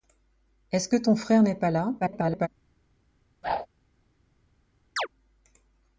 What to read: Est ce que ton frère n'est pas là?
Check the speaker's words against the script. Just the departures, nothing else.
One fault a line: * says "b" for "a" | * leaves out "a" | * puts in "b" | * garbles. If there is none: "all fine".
* garbles